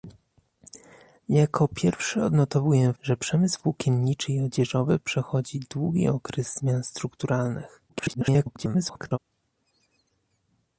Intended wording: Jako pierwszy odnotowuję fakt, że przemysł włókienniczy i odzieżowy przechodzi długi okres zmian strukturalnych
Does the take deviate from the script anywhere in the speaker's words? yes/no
yes